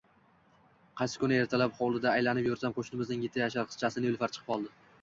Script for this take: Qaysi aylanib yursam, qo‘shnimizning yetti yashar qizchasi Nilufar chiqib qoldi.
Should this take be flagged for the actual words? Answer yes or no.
yes